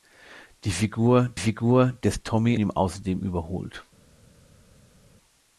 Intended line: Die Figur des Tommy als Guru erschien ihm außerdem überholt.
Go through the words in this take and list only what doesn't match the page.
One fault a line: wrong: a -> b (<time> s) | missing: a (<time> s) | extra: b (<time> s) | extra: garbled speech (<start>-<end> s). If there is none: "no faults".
extra: Figur (1.4 s)
missing: als Guru erschien (2.6 s)